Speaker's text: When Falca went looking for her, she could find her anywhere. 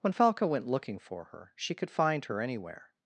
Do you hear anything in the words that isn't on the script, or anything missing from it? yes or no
no